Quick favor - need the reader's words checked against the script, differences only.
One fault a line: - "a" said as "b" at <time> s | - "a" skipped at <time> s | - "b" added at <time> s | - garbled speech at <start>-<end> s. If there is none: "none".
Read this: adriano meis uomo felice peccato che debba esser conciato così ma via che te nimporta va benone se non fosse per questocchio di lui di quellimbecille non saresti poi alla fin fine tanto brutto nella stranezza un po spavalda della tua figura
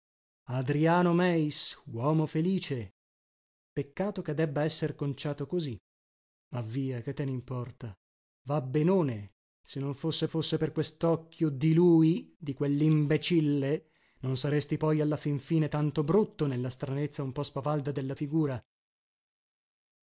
- "fosse" added at 10.2 s
- "tua" skipped at 18.1 s